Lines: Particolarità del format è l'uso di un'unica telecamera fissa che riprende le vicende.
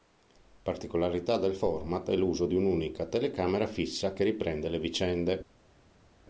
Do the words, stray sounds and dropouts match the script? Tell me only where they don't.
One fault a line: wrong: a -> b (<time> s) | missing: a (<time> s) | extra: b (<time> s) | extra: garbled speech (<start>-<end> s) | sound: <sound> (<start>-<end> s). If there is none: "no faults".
no faults